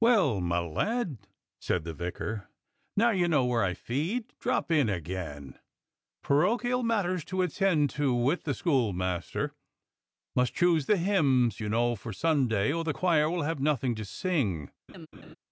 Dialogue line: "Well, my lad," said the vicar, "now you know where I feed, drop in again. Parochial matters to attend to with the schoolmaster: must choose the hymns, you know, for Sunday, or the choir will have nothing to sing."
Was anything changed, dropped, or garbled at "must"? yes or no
no